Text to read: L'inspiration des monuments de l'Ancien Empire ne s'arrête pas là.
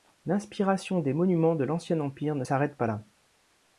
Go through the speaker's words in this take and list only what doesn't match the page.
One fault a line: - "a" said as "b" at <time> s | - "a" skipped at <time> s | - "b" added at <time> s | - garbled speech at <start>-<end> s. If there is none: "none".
none